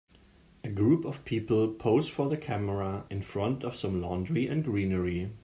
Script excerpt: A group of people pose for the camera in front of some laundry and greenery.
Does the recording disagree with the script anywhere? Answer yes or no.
no